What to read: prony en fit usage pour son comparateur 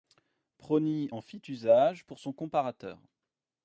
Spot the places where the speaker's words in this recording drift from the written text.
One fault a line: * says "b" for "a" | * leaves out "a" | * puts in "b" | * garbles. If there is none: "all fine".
all fine